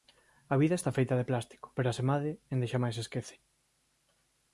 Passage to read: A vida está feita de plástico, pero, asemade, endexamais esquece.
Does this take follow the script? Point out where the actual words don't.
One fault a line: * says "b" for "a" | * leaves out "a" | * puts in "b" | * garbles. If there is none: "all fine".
all fine